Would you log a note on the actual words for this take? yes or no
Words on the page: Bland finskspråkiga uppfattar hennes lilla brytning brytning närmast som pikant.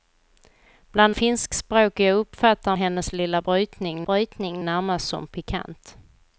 no